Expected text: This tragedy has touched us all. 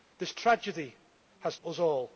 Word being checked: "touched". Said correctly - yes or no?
no